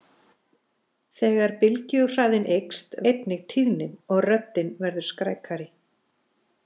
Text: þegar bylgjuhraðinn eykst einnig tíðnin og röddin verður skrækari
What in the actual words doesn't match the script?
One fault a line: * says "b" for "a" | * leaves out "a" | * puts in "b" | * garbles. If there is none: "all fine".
all fine